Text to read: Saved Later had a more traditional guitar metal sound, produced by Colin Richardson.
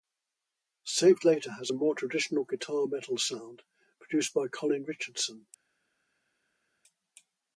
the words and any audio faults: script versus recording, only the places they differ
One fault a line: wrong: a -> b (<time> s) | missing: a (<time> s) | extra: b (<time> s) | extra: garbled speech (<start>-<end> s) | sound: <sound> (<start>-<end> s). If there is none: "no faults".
wrong: had -> has (1.6 s)